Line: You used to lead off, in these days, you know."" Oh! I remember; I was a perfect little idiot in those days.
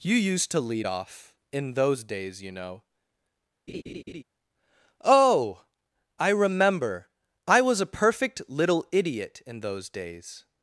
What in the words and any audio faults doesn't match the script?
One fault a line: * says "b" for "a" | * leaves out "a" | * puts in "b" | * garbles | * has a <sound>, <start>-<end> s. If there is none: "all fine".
* says "those" for "these"
* has a laugh, 3.7-4.2 s